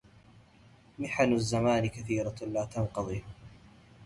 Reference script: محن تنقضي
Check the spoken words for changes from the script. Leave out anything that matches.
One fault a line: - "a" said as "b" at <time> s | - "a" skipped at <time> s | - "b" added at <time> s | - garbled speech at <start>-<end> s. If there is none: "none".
- "الزمان كثيرة لا" added at 1.3 s